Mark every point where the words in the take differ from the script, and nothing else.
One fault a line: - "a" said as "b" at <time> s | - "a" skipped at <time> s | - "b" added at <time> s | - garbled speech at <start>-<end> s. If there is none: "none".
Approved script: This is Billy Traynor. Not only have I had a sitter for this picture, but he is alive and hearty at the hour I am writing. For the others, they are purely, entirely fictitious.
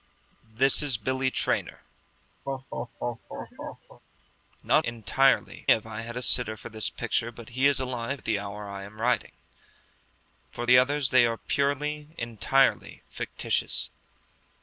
- "only" said as "entirely" at 4.8 s
- "and hearty" skipped at 8.2 s